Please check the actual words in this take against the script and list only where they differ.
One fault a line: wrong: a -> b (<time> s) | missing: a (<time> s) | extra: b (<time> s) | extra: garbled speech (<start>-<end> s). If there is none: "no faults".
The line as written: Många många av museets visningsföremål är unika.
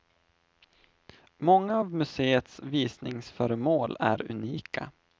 missing: många (1.8 s)